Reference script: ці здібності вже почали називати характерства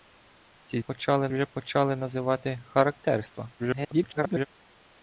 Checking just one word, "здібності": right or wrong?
wrong